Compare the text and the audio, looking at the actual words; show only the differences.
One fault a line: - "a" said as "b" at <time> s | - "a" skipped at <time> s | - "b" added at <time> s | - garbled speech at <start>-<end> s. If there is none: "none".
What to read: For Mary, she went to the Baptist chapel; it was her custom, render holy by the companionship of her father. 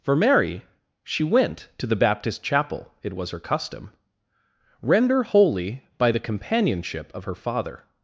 none